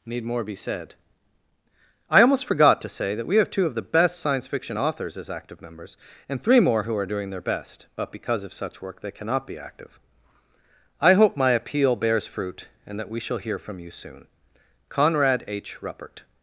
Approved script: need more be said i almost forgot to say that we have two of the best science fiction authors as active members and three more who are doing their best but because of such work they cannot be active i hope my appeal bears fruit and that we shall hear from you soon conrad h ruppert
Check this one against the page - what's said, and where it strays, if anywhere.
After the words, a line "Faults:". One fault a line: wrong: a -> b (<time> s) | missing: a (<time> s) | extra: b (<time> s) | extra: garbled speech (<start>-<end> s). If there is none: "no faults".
need more be said i almost forgot to say that we have two of the best science fiction authors as active members and three more who are doing their best but because of such work they cannot be active i hope my appeal bears fruit and that we shall hear from you soon conrad h ruppert
Faults:
no faults